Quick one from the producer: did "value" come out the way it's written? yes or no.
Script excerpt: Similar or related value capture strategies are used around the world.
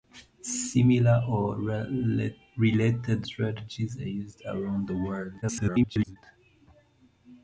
no